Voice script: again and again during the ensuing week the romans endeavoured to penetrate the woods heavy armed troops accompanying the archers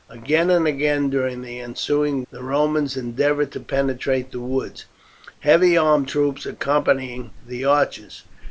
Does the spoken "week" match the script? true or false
false